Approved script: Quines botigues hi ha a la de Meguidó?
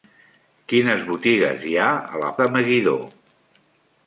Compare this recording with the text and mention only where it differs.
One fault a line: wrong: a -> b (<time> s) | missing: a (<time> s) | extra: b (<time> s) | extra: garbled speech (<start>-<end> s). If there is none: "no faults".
no faults